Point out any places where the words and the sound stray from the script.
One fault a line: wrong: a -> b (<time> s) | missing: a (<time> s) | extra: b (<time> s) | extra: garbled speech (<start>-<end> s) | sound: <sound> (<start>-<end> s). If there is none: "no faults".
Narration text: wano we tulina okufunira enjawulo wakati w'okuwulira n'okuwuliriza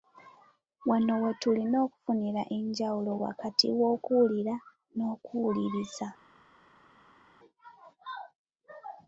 no faults